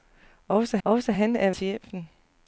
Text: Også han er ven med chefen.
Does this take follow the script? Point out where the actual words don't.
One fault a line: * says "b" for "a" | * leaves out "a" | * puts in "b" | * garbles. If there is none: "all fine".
* puts in "også"
* leaves out "ven med"